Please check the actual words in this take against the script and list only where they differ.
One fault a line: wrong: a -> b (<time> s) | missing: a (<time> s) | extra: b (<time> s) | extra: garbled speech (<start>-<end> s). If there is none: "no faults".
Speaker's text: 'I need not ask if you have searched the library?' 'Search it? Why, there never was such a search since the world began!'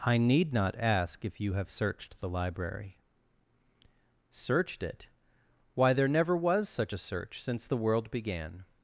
wrong: Search -> Searched (4.3 s)